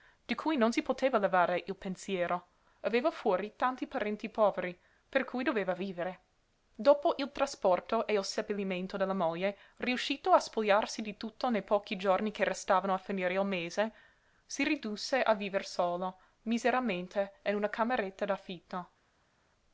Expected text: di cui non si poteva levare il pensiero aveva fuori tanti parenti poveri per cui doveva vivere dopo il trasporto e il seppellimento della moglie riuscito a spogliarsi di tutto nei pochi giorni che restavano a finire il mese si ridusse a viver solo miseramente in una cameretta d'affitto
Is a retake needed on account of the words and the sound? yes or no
no